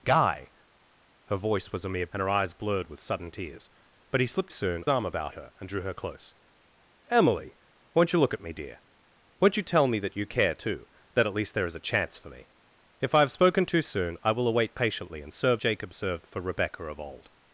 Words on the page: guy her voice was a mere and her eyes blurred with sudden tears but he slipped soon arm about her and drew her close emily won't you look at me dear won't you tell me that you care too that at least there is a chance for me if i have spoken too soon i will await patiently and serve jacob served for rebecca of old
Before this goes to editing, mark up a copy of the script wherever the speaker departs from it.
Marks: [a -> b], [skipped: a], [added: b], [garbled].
guy her voice was a mere and her eyes blurred with sudden tears but he slipped soon arm about her and drew her close emily won't you look at me dear won't you tell me that you care too that at least there is a chance for me if i have spoken too soon i will await patiently and serve jacob served for rebecca of old